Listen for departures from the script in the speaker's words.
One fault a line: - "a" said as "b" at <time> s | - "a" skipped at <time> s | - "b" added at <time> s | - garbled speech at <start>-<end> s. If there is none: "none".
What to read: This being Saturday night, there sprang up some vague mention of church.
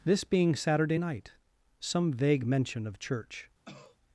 - "there sprang up" skipped at 1.3 s